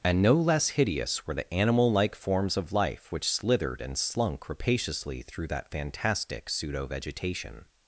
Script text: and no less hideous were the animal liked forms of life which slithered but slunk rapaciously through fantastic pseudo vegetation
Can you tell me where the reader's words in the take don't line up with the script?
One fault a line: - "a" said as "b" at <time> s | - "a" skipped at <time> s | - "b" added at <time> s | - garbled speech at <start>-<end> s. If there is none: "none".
- "liked" said as "like" at 1.9 s
- "but" said as "and" at 3.8 s
- "that" added at 5.5 s